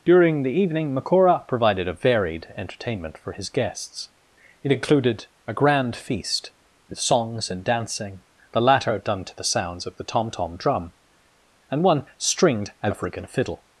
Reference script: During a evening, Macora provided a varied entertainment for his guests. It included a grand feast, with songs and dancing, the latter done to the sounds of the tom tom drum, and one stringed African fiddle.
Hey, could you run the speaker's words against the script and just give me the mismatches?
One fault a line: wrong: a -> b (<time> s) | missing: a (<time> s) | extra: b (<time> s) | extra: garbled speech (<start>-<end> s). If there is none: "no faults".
wrong: a -> the (0.4 s)